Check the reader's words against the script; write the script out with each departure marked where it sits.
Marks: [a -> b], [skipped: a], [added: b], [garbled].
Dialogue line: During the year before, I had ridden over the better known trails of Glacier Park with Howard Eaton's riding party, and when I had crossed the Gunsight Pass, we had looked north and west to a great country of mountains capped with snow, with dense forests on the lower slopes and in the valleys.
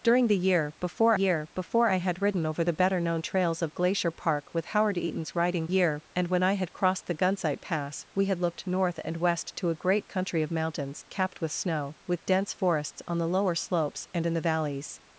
During the year before, [added: year before] I had ridden over the better known trails of Glacier Park with Howard Eaton's riding [party, -> year] and when I had crossed the Gunsight Pass, we had looked north and west to a great country of mountains capped with snow, with dense forests on the lower slopes and in the valleys.